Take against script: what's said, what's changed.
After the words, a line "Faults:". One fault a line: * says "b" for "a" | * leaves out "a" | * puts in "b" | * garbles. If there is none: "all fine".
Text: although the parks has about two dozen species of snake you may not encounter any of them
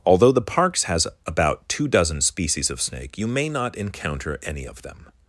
although the parks has about two dozen species of snake you may not encounter any of them
Faults:
all fine